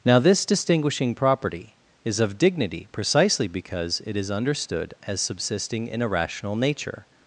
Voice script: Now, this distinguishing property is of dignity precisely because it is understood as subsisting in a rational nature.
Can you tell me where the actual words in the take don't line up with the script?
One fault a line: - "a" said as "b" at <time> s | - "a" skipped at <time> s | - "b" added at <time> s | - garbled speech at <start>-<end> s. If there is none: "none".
none